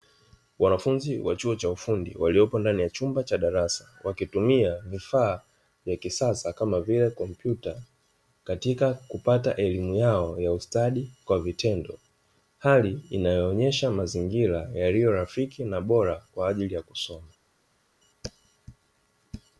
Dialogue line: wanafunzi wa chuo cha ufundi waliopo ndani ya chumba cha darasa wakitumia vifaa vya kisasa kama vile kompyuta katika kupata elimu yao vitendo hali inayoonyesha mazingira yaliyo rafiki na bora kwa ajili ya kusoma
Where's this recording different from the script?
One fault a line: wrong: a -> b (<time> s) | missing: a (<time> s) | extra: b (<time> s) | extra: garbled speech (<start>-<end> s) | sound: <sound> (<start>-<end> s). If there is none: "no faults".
extra: ya ustadi kwa (10.4 s)